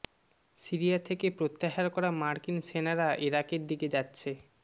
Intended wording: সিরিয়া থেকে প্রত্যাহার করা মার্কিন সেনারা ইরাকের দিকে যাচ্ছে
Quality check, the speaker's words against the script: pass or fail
pass